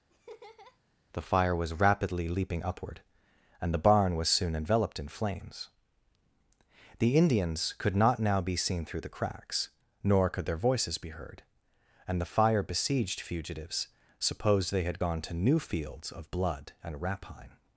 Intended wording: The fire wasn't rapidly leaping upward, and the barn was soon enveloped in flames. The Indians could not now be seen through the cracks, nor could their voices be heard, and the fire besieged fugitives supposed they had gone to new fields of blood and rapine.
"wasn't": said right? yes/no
no